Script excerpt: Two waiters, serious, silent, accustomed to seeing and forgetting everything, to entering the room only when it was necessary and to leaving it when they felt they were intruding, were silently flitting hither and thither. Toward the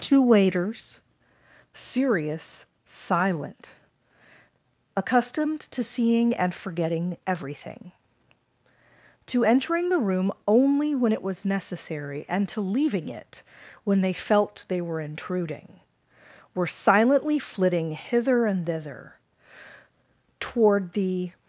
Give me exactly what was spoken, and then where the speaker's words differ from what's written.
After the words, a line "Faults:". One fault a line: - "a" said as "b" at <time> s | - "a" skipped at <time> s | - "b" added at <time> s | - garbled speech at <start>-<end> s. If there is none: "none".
Two waiters, serious, silent, accustomed to seeing and forgetting everything, to entering the room only when it was necessary and to leaving it when they felt they were intruding, were silently flitting hither and thither. Toward the
Faults:
none